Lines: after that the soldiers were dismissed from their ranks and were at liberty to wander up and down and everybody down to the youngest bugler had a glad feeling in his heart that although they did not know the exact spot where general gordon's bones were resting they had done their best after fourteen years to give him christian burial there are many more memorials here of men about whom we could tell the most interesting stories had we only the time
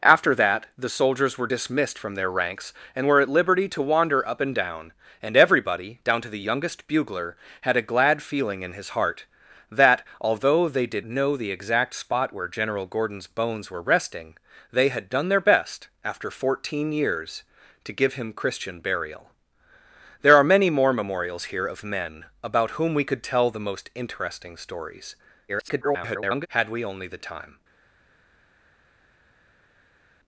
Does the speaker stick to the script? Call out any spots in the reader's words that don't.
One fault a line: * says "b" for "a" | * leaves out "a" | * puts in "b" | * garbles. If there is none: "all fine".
* leaves out "not"
* garbles